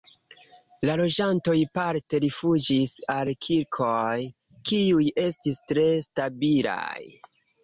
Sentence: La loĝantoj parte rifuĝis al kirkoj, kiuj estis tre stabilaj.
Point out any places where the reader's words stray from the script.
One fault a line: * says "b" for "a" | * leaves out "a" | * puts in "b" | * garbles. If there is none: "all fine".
all fine